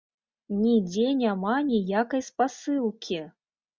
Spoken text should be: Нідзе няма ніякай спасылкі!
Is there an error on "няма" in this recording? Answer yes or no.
no